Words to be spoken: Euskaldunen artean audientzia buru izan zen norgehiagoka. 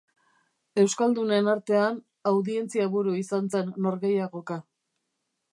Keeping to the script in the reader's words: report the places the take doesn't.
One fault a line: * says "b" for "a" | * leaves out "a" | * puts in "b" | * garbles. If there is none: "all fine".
all fine